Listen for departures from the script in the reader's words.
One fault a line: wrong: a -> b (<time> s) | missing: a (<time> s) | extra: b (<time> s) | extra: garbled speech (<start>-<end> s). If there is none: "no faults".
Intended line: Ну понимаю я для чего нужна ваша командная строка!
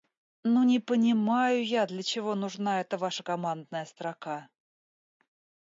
extra: не (0.6 s)
extra: эта (2.8 s)